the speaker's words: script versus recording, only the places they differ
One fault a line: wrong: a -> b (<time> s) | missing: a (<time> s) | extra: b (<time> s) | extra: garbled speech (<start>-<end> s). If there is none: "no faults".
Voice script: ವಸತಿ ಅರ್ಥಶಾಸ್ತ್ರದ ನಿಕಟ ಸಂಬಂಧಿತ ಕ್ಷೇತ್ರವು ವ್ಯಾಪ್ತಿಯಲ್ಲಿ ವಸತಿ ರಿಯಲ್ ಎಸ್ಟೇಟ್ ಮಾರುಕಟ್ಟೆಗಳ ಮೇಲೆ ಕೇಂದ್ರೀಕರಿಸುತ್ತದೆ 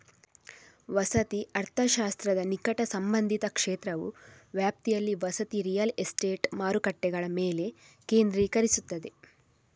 no faults